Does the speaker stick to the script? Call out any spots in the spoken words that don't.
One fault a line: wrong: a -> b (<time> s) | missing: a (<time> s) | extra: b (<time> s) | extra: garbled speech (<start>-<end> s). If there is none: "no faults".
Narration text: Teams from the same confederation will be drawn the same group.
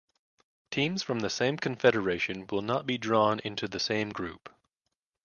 extra: not (2.6 s)
extra: into (3.4 s)